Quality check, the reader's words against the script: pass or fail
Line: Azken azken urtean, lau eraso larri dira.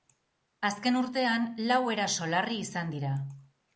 fail